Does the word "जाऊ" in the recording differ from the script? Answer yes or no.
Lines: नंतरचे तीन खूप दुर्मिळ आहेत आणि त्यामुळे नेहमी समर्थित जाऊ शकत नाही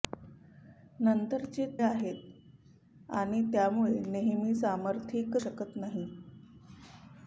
yes